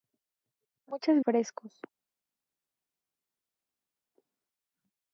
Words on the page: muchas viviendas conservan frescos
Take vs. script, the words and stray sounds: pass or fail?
fail